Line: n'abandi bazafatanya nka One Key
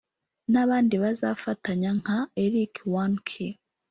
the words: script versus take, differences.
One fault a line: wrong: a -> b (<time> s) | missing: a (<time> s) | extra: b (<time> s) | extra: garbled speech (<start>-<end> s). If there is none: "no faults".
extra: Eric (2.4 s)